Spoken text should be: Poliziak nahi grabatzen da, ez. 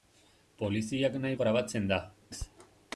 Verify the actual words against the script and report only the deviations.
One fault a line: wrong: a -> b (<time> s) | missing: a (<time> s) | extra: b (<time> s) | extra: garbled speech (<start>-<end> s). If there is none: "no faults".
no faults